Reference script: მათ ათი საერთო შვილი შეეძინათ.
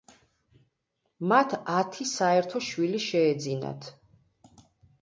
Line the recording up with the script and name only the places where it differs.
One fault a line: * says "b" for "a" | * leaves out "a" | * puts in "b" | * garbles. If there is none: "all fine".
all fine